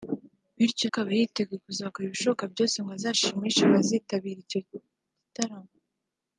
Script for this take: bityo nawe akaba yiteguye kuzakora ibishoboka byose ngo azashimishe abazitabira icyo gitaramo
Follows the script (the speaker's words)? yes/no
no